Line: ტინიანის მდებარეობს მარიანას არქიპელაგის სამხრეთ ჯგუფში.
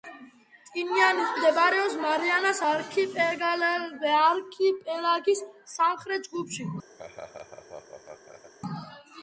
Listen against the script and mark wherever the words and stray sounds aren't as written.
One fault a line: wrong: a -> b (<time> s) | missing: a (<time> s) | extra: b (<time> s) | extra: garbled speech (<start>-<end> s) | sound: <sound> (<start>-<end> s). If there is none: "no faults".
sound: laugh (7.0-8.5 s)